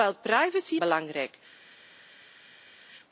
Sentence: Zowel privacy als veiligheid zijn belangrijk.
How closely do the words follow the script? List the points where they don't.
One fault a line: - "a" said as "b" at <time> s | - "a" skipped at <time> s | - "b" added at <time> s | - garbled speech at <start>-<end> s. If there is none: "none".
- "als veiligheid zijn" skipped at 0.8 s